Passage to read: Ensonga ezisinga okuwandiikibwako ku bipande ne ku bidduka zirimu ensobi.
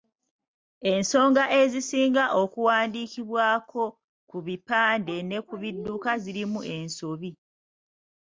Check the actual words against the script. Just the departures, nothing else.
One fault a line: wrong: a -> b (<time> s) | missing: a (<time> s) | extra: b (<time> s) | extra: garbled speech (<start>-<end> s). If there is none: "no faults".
no faults